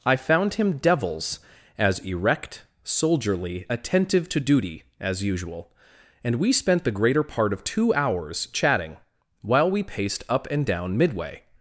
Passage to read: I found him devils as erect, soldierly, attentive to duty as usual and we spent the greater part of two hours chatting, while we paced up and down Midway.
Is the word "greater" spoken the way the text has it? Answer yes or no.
yes